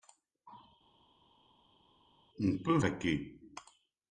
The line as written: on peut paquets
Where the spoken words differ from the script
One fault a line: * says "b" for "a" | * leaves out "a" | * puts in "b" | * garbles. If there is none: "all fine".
all fine